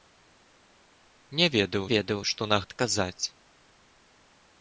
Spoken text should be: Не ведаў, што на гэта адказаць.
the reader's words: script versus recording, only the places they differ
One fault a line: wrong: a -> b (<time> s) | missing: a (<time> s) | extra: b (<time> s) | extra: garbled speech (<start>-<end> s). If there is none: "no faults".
extra: ведаў (1.9 s)
missing: гэта (2.6 s)